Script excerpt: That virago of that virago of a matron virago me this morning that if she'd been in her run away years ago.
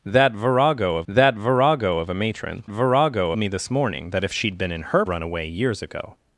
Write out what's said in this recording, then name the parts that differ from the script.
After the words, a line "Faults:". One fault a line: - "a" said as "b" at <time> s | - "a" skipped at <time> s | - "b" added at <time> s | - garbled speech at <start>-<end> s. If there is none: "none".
That virago of that virago of a matron virago me this morning that if she'd been in her run away years ago.
Faults:
none